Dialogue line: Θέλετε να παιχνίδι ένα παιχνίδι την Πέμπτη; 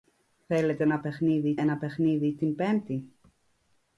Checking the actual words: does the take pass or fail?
pass